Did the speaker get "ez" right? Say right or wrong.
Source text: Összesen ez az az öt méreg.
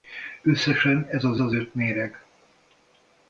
right